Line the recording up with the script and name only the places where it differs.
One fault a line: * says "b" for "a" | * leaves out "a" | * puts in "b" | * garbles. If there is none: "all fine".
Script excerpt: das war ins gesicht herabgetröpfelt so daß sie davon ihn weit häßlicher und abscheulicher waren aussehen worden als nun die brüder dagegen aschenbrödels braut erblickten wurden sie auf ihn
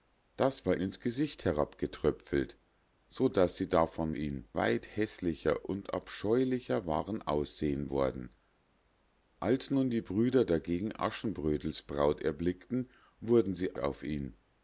all fine